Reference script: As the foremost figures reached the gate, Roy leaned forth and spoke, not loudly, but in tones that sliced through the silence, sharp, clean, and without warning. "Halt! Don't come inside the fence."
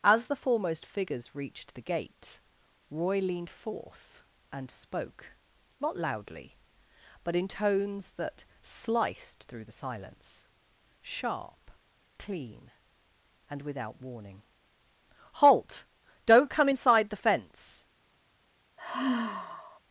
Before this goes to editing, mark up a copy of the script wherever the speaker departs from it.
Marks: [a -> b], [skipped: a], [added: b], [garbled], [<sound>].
As the foremost figures reached the gate, Roy leaned forth and spoke, not loudly, but in tones that sliced through the silence, sharp, clean, and without warning. "Halt! Don't come inside the fence." [sigh]